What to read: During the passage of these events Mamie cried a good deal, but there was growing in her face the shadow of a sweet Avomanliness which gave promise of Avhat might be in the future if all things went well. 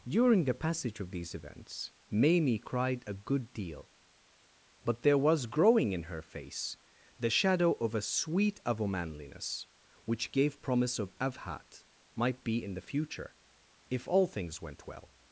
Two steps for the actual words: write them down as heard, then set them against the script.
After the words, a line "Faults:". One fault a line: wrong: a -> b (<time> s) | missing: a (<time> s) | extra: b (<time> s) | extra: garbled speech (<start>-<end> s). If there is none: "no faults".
During the passage of these events Mamie cried a good deal, but there was growing in her face the shadow of a sweet Avomanliness which gave promise of Avhat might be in the future if all things went well.
Faults:
no faults